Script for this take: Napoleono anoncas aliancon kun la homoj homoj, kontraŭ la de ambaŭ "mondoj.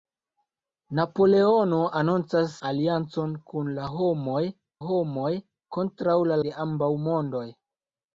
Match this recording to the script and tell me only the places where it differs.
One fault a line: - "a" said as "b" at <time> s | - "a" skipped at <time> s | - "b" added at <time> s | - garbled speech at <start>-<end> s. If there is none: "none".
none